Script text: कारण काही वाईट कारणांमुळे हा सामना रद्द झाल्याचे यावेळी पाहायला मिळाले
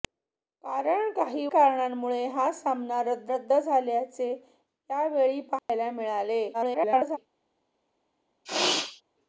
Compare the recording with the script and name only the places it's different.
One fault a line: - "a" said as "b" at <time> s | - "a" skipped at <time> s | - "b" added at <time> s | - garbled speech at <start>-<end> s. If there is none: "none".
- "वाईट" skipped at 1.4 s
- "रद्द" added at 3.3 s
- garbled speech at 6.5-7.2 s